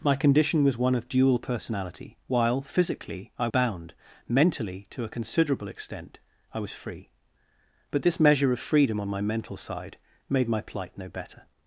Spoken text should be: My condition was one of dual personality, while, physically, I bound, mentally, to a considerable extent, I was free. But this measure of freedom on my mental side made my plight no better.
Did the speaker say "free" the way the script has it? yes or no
yes